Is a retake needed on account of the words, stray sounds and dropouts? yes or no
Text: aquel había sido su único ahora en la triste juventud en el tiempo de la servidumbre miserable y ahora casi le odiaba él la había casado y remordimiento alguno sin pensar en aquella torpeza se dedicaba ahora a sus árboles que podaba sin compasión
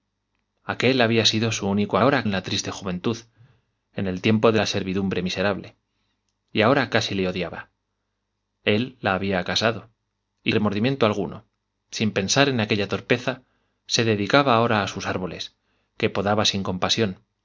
no